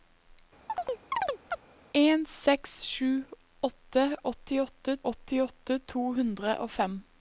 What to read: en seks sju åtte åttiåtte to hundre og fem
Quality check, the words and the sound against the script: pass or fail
fail